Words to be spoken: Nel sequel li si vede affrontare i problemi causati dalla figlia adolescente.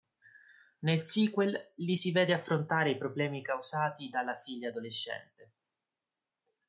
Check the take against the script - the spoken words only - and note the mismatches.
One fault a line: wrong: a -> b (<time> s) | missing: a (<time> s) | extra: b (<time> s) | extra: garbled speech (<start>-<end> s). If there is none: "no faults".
no faults